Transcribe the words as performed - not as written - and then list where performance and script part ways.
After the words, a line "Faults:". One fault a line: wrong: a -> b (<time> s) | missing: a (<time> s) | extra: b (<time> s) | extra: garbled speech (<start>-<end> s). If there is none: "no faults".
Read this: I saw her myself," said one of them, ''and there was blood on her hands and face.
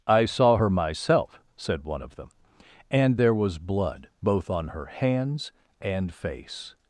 I saw her myself," said one of them, ''and there was blood both on her hands and face.
Faults:
extra: both (4.2 s)